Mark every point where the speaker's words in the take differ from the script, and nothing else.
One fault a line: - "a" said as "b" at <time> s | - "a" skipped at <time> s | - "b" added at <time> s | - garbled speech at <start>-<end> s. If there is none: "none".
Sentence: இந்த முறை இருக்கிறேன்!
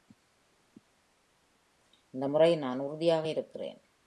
- "நான் உறுதியாக" added at 2.6 s